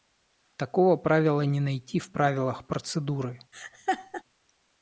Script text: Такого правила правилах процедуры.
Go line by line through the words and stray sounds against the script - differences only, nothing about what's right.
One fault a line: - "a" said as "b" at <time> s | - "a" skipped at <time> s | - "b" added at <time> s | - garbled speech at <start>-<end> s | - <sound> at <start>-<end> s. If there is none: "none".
- "не найти в" added at 1.4 s
- laugh at 3.5-4.2 s